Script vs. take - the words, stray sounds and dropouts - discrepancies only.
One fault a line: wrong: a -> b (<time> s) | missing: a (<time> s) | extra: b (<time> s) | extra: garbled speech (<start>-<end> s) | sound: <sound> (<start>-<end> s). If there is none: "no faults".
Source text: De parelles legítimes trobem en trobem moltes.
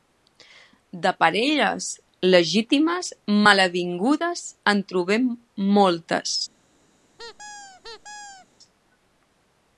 wrong: trobem -> malavingudes (3.5 s)
sound: squeak (7.2-8.5 s)